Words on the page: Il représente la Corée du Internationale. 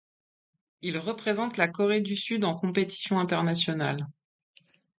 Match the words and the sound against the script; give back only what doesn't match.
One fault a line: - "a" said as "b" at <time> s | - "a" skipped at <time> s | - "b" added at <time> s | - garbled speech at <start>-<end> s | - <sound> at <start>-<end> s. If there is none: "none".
- "Sud en compétition" added at 2.1 s